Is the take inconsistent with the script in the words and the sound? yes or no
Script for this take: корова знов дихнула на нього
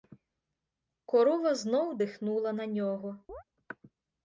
yes